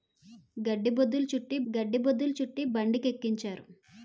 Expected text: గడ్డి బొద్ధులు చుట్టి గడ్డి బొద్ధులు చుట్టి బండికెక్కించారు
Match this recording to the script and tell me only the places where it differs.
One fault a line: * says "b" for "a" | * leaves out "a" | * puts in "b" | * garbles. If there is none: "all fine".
all fine